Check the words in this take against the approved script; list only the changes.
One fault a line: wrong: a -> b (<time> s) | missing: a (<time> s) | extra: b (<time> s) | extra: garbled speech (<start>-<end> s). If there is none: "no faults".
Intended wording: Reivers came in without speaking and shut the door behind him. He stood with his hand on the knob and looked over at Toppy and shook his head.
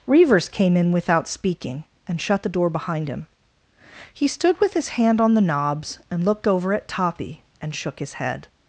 wrong: knob -> knobs (5.4 s)